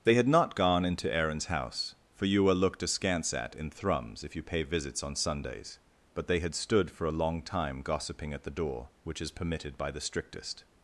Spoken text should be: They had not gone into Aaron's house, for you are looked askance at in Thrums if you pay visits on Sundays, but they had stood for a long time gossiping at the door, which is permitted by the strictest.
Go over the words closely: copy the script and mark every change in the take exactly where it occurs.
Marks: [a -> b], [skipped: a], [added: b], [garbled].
They had not gone into Aaron's house, for you are looked askance at in Thrums if you pay visits on Sundays, but they had stood for a long time gossiping at the door, which is permitted by the strictest.